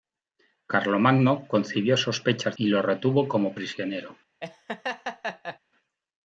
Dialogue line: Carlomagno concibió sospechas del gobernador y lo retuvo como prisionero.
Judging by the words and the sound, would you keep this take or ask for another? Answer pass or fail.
fail